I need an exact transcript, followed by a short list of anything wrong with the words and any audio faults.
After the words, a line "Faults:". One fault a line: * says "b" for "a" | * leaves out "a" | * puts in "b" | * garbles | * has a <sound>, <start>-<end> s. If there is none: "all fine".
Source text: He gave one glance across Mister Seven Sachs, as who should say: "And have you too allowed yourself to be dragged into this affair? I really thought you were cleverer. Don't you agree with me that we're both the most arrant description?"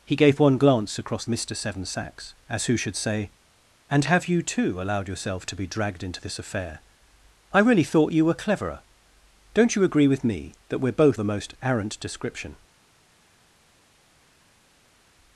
He gave one glance across Mister Seven Sachs, as who should say: "And have you too allowed yourself to be dragged into this affair? I really thought you were cleverer. Don't you agree with me that we're both the most arrant description?"
Faults:
all fine